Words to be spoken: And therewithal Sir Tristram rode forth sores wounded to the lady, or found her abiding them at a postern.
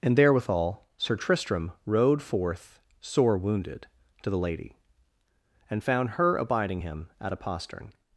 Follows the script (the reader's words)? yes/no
no